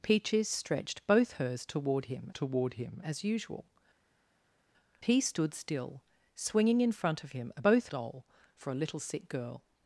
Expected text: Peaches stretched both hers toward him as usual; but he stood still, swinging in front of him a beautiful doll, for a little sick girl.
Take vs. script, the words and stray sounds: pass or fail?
fail